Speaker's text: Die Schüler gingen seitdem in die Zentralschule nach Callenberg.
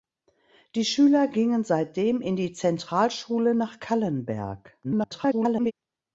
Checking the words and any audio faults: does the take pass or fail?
fail